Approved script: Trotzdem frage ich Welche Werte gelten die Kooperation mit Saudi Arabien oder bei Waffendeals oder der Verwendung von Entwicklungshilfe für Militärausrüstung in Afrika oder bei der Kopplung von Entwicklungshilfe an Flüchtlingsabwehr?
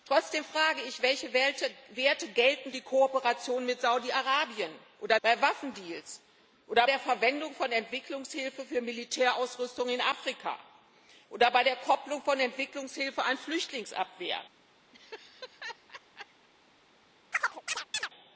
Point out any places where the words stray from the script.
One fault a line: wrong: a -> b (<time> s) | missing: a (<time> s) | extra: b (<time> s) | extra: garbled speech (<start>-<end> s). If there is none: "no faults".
no faults